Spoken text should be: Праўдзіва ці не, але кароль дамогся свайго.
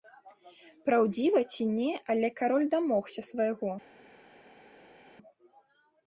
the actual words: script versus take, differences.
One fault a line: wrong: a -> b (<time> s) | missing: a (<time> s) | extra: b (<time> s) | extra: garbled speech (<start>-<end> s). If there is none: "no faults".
no faults